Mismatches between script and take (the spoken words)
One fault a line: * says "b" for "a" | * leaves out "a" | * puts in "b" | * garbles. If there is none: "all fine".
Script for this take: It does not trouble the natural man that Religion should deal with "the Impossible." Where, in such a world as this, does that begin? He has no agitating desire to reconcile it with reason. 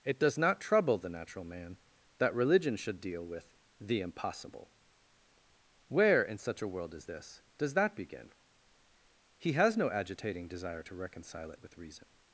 all fine